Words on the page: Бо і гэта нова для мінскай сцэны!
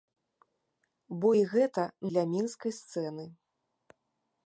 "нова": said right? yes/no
no